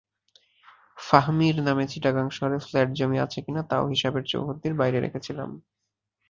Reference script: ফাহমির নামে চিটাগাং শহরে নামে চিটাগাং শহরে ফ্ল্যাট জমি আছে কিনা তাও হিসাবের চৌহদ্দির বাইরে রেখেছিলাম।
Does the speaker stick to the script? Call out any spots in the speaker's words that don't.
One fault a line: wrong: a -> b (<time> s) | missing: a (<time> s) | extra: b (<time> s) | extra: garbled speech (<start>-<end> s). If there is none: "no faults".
missing: নামে চিটাগাং শহরে (2.6 s)